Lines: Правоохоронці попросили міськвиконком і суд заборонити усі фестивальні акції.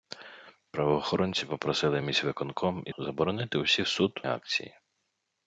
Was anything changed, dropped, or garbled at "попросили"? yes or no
no